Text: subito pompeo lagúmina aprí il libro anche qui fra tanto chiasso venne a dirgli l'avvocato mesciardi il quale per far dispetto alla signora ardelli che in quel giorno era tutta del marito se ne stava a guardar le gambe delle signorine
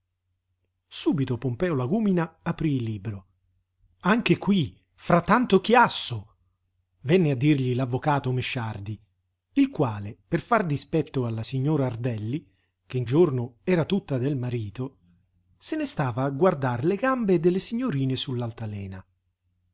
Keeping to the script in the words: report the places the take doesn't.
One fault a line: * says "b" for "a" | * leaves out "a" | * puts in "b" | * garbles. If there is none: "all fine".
* leaves out "quel"